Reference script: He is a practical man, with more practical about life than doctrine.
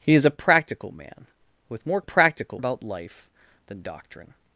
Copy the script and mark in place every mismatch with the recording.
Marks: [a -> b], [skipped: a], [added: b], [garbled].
He is a practical man, with more practical about life than doctrine.